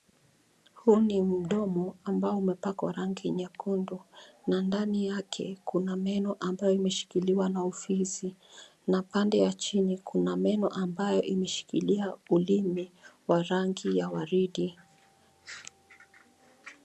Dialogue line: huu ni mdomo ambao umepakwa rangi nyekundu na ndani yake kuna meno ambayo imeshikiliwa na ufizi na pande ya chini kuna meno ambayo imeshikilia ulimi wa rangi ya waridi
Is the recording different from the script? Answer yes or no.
no